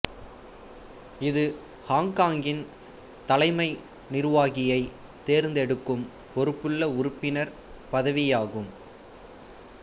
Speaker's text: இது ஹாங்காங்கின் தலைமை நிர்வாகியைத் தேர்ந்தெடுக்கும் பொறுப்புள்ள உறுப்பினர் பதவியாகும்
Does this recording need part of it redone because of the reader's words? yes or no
no